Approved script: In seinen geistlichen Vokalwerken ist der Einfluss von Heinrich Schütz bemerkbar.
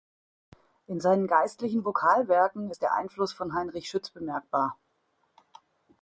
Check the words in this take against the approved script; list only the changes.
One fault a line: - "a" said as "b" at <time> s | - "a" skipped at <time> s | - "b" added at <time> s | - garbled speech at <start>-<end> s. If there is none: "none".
none